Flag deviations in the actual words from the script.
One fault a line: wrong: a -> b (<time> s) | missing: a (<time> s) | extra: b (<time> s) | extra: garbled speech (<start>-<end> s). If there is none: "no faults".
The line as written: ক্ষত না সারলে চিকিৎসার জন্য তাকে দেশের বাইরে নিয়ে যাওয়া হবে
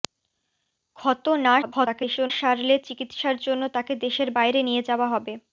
extra: garbled speech (1.6-2.3 s)